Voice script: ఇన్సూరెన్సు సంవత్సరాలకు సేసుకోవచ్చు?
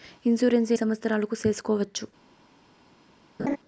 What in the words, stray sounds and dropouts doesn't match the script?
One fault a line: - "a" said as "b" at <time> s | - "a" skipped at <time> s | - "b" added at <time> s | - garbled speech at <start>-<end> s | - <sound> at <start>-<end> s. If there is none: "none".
- laugh at 3.4-3.6 s